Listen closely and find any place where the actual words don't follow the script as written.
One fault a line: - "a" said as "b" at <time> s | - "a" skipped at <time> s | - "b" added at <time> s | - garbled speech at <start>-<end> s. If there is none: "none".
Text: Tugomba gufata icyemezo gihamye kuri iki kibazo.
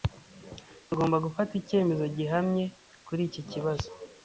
none